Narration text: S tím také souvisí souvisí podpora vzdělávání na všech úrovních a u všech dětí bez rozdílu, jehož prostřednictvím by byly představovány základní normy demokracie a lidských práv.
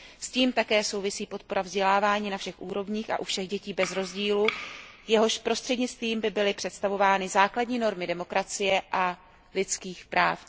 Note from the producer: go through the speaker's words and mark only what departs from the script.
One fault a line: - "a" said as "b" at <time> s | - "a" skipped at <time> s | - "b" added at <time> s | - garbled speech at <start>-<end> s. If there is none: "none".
- "souvisí" skipped at 1.2 s